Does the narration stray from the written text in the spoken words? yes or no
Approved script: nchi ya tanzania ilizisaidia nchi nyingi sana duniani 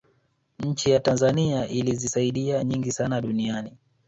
yes